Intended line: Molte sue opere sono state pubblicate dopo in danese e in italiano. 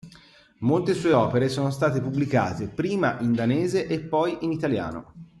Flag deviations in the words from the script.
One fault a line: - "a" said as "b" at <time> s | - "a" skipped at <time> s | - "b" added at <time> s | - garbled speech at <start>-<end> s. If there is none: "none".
- "dopo" said as "prima" at 2.7 s
- "poi" added at 4.0 s